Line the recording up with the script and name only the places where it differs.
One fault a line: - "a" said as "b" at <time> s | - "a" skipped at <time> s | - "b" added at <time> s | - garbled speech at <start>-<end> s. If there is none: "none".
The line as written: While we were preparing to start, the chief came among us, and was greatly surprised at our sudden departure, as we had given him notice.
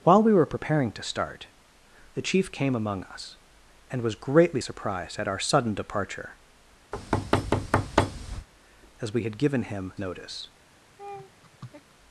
none